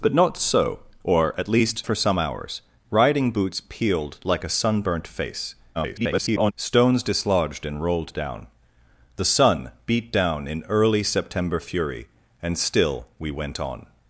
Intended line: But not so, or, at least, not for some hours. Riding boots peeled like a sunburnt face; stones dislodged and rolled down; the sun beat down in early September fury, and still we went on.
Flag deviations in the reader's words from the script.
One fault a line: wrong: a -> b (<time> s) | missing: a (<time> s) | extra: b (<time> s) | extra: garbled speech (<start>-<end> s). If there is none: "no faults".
missing: not (1.9 s)
extra: garbled speech (5.7-6.5 s)